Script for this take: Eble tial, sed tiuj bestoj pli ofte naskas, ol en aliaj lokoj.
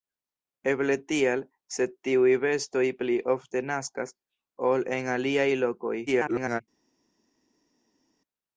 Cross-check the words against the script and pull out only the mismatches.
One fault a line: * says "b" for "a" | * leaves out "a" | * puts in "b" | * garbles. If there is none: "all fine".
* garbles